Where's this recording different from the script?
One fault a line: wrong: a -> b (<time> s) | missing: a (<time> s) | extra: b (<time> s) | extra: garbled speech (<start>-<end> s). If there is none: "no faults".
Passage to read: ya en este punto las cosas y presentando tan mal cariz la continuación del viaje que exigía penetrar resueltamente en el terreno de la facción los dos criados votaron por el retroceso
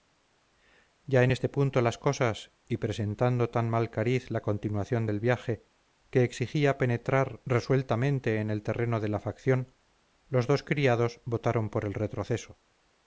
no faults